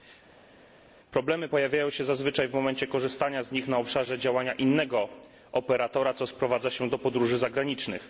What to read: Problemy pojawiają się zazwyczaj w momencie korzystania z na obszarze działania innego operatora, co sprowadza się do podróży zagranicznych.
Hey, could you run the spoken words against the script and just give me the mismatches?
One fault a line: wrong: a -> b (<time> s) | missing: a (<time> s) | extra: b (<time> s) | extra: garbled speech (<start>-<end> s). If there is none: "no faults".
extra: nich (3.5 s)